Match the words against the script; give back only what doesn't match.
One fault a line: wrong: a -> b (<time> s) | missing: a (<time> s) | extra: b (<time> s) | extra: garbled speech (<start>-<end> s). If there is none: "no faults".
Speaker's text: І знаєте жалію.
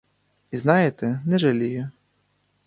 extra: не (1.2 s)